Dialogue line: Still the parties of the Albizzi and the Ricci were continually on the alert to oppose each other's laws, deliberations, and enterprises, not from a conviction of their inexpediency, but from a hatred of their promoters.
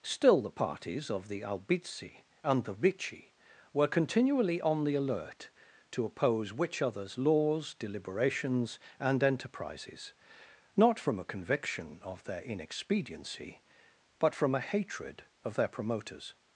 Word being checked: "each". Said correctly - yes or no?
no